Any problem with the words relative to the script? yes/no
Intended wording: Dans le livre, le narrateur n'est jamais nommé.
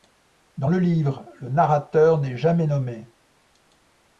no